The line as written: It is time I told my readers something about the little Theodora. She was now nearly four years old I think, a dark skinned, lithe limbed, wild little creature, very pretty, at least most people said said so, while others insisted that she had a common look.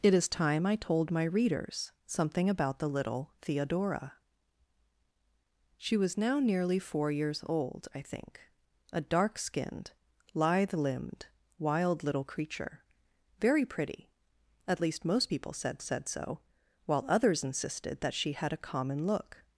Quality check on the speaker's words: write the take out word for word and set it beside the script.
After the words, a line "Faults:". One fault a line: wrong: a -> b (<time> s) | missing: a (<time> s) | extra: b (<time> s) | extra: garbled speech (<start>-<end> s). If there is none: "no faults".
It is time I told my readers something about the little Theodora. She was now nearly four years old I think, a dark skinned, lithe limbed, wild little creature, very pretty, at least most people said said so, while others insisted that she had a common look.
Faults:
no faults